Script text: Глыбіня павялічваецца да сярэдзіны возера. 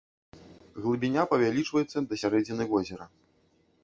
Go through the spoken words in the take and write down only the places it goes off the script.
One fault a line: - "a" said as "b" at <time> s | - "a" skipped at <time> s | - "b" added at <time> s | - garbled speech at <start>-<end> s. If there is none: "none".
none